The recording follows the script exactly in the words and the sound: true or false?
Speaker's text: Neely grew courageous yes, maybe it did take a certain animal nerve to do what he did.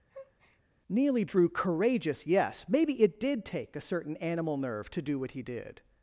false